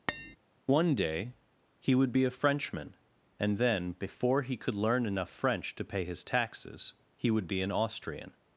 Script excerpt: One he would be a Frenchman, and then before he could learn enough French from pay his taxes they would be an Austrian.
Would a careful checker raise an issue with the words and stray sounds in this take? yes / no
yes